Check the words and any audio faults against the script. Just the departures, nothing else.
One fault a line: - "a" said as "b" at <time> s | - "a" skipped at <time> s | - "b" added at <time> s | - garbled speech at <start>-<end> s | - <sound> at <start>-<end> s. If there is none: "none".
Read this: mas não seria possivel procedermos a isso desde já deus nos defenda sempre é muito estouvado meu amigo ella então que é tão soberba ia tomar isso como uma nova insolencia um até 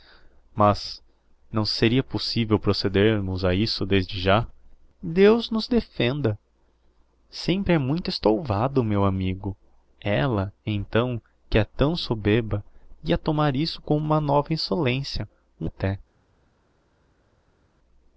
none